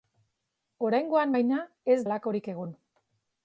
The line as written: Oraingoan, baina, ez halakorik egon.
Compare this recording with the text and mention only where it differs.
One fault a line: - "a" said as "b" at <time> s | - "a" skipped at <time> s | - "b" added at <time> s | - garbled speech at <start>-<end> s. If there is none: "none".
none